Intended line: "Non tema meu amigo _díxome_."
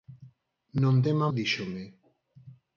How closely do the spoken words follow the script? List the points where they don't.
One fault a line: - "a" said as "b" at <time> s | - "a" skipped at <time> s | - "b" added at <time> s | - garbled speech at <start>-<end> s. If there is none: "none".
- "meu amigo" skipped at 1.3 s